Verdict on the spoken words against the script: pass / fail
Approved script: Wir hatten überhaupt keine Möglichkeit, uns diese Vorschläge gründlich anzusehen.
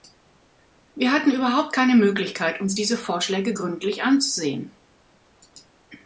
pass